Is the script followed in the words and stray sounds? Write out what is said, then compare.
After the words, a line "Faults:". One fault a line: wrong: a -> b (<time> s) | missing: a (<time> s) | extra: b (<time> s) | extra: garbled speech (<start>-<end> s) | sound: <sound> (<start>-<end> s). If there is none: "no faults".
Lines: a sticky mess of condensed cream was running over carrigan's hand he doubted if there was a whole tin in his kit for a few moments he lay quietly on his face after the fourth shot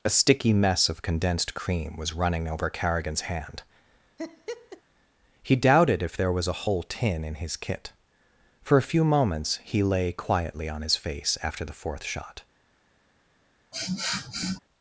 a sticky mess of condensed cream was running over carrigan's hand he doubted if there was a whole tin in his kit for a few moments he lay quietly on his face after the fourth shot
Faults:
sound: laugh (4.2-4.8 s)
sound: sniff (13.7-14.6 s)